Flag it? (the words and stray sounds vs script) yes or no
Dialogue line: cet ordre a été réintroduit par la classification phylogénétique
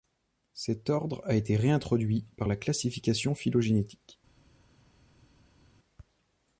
no